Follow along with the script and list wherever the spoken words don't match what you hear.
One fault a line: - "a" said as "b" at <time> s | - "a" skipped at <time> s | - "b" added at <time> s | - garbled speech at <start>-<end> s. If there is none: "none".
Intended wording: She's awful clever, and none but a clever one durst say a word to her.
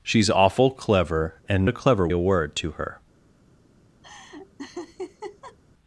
- "none but" skipped at 1.7 s
- "one durst say" skipped at 2.1 s